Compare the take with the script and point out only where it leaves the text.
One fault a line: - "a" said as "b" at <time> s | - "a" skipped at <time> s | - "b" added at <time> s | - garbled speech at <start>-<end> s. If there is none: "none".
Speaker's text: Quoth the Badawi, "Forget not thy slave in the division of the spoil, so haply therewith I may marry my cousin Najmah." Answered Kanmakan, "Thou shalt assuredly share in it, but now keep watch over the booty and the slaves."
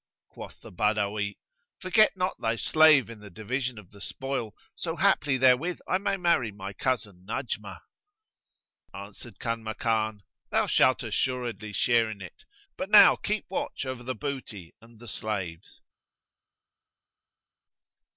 none